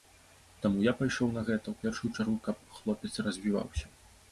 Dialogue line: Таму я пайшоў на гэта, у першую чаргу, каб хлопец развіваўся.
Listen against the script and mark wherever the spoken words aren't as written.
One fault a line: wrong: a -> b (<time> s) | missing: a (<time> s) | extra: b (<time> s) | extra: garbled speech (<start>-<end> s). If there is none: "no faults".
no faults